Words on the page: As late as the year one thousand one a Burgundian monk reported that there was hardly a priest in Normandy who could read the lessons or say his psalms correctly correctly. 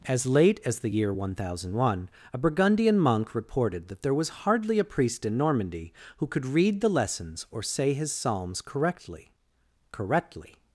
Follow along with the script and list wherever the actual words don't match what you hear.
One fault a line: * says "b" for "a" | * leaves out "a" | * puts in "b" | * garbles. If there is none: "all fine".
all fine